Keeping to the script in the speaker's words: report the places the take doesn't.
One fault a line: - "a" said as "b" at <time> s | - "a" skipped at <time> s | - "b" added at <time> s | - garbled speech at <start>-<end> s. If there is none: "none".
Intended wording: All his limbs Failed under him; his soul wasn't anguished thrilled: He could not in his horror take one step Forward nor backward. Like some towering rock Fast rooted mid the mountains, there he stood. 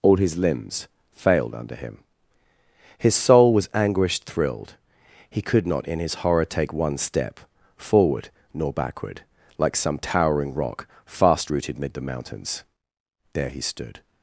- "wasn't" said as "was" at 3.5 s